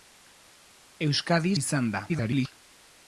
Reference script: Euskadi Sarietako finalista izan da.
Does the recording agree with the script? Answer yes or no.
no